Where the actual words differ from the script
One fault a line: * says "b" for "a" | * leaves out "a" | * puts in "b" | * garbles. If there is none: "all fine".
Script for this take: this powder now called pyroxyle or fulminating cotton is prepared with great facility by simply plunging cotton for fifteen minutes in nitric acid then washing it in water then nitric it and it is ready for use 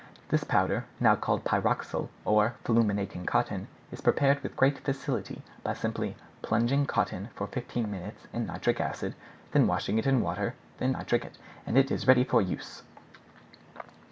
all fine